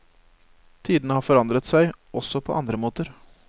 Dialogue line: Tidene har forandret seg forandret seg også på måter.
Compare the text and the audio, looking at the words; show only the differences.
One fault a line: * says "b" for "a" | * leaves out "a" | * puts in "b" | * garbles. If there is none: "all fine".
* leaves out "forandret seg"
* puts in "andre"